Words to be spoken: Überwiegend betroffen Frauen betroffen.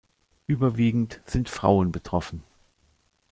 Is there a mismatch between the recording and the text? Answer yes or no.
yes